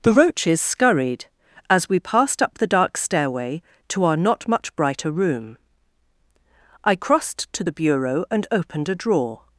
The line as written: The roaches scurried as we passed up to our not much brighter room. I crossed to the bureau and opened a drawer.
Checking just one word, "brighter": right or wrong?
right